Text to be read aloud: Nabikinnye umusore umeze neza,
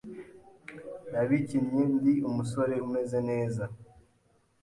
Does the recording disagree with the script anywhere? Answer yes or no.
yes